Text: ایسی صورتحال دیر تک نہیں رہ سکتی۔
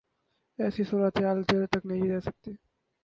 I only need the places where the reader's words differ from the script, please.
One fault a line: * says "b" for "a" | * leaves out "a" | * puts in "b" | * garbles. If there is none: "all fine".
all fine